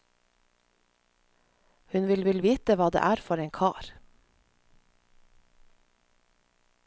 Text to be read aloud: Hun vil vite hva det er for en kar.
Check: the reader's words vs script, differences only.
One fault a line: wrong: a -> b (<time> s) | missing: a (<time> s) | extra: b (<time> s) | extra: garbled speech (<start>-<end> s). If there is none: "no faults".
extra: vil (2.2 s)